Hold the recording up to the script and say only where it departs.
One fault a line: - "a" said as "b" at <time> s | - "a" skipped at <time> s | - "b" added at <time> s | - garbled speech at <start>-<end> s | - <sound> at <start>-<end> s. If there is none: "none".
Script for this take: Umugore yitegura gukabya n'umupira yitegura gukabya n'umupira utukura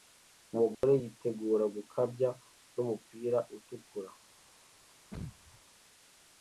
- dropout at 0.7-0.8 s
- "yitegura gukabya n'umupira" skipped at 3.4 s
- sneeze at 5.1-5.6 s